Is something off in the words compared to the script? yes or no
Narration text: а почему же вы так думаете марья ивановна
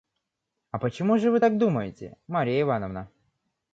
no